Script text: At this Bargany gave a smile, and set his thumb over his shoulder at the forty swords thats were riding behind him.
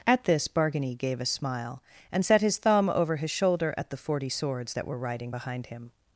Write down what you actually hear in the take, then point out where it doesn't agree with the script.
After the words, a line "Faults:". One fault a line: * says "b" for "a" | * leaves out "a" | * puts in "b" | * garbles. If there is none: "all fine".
At this Bargany gave a smile, and set his thumb over his shoulder at the forty swords that were riding behind him.
Faults:
* says "that" for "thats"